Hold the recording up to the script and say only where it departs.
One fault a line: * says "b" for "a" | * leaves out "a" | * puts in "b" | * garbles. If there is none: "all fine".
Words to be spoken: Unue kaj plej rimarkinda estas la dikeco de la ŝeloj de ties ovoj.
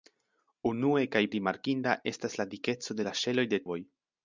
* leaves out "plej"
* leaves out "ties"